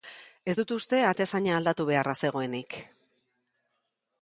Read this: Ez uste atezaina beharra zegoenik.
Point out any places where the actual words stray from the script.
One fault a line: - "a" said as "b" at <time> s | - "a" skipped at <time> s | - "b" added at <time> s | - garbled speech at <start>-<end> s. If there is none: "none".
- "dut" added at 0.6 s
- "aldatu" added at 1.6 s